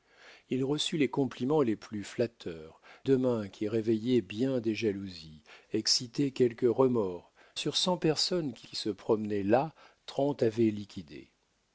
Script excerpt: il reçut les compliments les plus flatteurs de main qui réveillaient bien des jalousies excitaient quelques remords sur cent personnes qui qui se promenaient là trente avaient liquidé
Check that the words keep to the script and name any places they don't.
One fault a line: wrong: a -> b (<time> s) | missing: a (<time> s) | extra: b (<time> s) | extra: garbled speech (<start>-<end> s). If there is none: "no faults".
no faults